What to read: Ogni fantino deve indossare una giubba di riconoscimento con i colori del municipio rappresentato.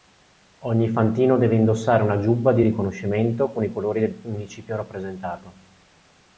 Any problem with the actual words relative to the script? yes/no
no